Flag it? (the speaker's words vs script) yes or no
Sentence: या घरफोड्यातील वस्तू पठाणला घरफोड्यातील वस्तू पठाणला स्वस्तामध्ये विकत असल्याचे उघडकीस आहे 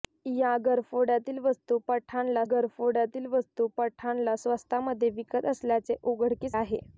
no